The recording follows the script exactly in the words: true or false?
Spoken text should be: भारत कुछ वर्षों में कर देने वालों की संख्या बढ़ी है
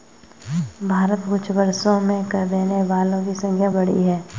true